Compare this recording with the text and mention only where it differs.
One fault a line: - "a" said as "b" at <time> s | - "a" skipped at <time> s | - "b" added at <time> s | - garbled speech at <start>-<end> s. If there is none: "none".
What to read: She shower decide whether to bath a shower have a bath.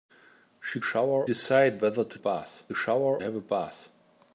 none